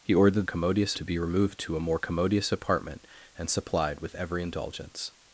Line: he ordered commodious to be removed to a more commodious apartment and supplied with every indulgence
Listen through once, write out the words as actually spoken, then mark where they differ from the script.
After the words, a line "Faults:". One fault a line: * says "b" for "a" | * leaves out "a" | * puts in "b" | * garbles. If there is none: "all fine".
he ordered commodious to be removed to a more commodious apartment and supplied with every indulgence
Faults:
all fine